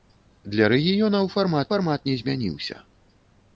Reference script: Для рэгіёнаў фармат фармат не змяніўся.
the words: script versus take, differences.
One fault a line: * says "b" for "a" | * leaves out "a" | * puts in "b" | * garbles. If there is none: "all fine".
all fine